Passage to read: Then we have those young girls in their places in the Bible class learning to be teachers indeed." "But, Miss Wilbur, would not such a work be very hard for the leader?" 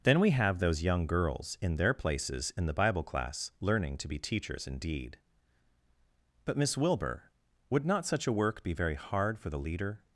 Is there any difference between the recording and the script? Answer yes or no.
no